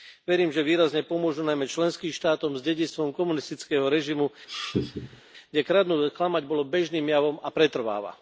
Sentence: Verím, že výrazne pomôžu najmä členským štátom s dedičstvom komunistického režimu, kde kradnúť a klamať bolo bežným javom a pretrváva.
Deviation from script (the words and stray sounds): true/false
true